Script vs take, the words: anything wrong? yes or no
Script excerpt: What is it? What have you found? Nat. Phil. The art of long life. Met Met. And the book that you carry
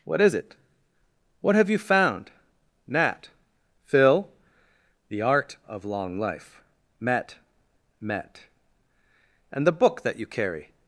no